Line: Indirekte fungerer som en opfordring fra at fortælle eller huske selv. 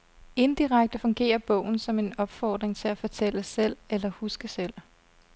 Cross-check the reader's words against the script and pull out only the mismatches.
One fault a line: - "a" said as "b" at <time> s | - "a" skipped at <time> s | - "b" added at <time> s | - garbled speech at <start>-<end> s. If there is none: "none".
- "bogen" added at 1.4 s
- "fra" said as "til" at 2.8 s
- "selv" added at 3.4 s